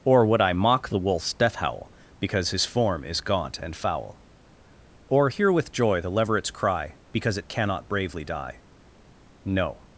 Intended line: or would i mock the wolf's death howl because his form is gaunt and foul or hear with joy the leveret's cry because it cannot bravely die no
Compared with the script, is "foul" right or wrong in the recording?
right